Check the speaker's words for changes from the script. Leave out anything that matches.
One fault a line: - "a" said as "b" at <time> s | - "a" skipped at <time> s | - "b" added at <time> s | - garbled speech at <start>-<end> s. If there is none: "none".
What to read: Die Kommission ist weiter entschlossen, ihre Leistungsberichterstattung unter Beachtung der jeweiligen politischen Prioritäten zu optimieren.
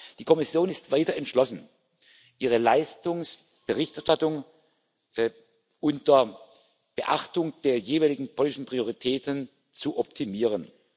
none